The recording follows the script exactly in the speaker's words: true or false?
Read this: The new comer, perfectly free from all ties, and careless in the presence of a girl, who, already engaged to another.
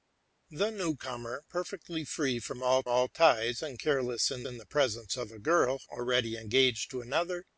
false